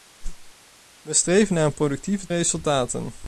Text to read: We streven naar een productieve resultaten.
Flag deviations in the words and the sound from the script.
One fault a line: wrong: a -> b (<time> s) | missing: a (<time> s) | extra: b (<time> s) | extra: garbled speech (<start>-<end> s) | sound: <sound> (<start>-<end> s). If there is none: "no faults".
sound: whoosh (0.2-0.5 s)